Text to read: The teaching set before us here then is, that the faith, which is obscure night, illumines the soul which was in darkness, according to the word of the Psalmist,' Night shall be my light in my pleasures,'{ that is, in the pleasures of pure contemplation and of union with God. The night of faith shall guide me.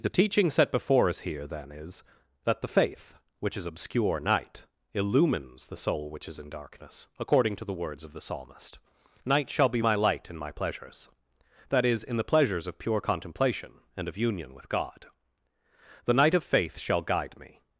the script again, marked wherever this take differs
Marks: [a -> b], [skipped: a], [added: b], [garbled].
The teaching set before us here then is, that the faith, which is obscure night, illumines the soul which [was -> is] in darkness, according to the [word -> words] of the Psalmist,' Night shall be my light in my pleasures,'{ that is, in the pleasures of pure contemplation and of union with God. The night of faith shall guide me.